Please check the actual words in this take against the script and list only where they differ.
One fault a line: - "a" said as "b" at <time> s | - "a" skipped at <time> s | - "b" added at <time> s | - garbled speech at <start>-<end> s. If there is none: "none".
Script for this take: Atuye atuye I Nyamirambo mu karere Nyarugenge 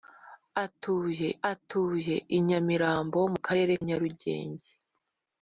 none